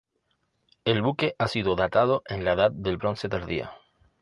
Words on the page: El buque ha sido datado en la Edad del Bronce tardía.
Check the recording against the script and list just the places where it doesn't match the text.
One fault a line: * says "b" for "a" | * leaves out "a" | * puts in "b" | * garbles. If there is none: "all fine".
all fine